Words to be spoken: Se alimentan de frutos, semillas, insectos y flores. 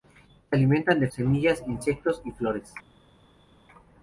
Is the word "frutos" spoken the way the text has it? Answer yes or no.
no